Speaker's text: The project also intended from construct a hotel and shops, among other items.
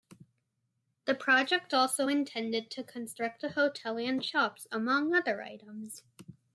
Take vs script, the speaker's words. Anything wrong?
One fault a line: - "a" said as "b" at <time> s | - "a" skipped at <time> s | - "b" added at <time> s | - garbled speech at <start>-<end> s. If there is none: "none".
- "from" said as "to" at 2.7 s